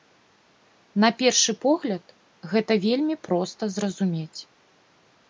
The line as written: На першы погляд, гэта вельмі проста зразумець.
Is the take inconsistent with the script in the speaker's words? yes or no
no